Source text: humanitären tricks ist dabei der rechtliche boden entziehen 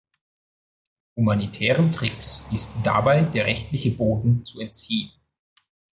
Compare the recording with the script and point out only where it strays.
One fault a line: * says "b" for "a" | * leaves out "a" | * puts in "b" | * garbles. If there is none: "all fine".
* puts in "zu"